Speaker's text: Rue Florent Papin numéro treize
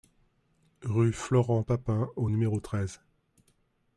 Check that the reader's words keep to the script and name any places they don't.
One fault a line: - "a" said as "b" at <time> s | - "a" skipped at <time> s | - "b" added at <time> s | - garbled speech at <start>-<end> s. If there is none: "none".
- "au" added at 2.2 s